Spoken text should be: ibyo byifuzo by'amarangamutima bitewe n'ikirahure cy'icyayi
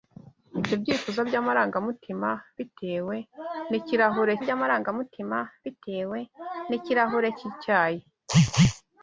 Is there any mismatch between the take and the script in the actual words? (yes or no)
yes